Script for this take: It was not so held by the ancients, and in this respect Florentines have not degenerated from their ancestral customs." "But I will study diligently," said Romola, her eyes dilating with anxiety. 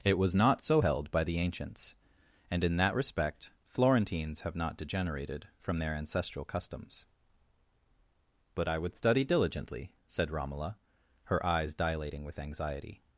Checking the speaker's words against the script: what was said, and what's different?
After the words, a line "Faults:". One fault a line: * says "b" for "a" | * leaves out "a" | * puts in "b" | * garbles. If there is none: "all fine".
It was not so held by the ancients, and in that respect Florentines have not degenerated from their ancestral customs." "But I would study diligently," said Romola, her eyes dilating with anxiety.
Faults:
* says "that" for "this"
* says "would" for "will"